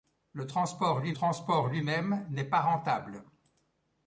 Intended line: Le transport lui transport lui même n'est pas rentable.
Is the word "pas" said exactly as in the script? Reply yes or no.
yes